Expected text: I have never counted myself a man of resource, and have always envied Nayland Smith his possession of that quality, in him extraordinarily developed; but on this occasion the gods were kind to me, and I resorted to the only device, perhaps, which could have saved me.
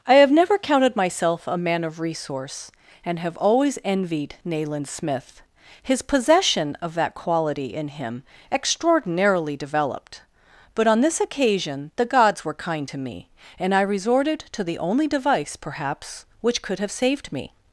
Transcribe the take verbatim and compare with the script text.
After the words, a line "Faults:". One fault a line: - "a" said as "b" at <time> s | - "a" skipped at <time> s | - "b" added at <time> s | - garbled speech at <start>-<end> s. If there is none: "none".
I have never counted myself a man of resource, and have always envied Nayland Smith his possession of that quality, in him extraordinarily developed; but on this occasion the gods were kind to me, and I resorted to the only device, perhaps, which could have saved me.
Faults:
none